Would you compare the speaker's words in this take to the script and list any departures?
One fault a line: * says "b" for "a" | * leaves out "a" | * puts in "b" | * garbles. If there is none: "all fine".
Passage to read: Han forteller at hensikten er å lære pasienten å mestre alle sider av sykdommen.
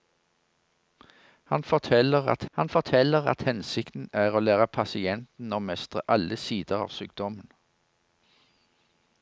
* puts in "han forteller at"